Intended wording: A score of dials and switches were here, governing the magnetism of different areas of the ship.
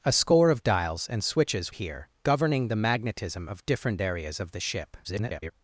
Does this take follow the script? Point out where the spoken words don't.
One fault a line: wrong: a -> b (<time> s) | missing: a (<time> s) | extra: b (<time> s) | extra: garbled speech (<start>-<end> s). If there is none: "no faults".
missing: were (1.8 s)
extra: garbled speech (5.0-5.5 s)